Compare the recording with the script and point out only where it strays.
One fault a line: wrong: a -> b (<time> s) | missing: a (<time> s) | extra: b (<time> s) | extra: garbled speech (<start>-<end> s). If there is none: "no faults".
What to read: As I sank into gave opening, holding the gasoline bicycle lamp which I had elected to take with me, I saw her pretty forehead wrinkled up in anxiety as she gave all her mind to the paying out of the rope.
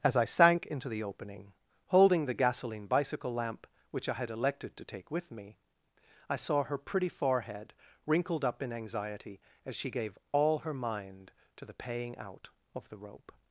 wrong: gave -> the (0.9 s)